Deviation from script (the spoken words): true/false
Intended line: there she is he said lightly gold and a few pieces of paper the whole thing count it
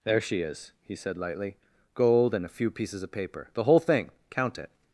false